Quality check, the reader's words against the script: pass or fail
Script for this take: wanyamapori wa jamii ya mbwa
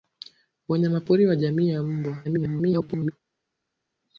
fail